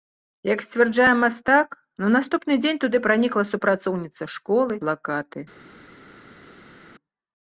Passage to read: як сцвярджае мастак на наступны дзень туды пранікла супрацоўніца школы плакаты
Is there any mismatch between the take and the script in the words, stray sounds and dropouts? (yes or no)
no